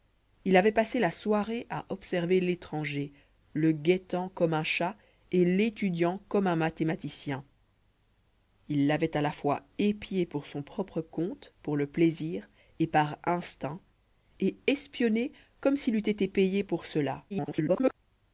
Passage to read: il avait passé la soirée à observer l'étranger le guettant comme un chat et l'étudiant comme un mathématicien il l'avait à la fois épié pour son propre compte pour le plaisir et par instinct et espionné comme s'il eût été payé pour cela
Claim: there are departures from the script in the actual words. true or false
true